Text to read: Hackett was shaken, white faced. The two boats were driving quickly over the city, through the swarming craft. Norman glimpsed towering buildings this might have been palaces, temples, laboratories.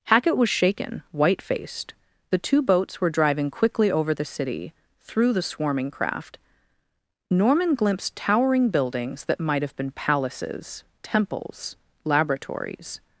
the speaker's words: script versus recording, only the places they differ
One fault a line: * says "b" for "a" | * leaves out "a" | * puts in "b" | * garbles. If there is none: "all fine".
* says "that" for "this"